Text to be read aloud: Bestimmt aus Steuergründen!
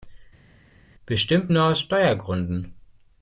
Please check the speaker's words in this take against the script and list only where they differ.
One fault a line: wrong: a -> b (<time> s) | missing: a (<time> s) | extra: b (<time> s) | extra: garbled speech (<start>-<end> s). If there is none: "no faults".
extra: nur (1.5 s)